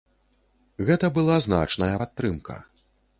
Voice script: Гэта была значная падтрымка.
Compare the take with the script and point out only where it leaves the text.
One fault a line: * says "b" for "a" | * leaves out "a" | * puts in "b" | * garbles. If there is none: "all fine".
all fine